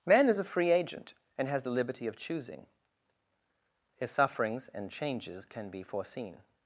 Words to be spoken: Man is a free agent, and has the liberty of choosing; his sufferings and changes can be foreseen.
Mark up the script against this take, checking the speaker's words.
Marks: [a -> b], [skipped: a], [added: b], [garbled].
Man is a free agent, and has the liberty of choosing; his sufferings and changes can be foreseen.